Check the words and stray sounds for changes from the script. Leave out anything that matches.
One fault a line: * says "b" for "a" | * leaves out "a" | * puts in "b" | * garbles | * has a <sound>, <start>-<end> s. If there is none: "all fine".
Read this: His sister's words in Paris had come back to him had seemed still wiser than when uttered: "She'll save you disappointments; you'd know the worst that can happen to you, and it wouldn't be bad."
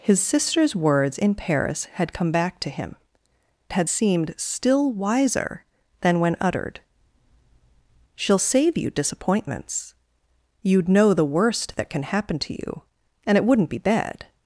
all fine